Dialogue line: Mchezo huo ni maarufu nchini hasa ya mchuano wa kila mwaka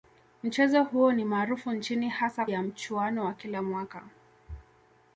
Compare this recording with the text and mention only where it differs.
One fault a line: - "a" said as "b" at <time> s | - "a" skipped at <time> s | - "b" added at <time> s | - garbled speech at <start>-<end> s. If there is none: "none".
none